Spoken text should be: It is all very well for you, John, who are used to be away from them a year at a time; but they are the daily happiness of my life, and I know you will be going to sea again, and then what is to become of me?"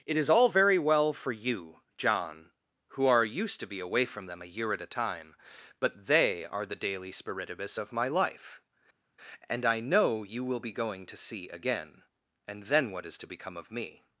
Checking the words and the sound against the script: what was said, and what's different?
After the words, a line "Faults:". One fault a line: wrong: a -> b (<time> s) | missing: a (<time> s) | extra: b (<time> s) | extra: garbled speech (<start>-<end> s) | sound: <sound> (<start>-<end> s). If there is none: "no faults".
It is all very well for you, John, who are used to be away from them a year at a time; but they are the daily spiritibus of my life, and I know you will be going to sea again, and then what is to become of me?"
Faults:
wrong: happiness -> spiritibus (7.1 s)